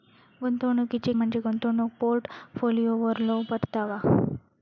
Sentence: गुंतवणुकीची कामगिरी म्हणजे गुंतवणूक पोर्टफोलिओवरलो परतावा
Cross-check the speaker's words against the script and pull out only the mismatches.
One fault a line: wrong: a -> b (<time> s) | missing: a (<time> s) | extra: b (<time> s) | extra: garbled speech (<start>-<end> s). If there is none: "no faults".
missing: कामगिरी (1.1 s)